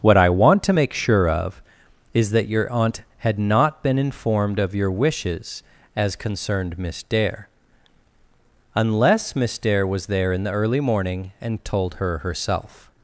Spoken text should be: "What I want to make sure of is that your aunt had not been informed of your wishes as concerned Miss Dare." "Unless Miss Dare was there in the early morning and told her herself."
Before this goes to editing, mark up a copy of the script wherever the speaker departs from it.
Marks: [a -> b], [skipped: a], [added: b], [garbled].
"What I want to make sure of is that your aunt had not been informed of your wishes as concerned Miss Dare." "Unless Miss Dare was there in the early morning and told her herself."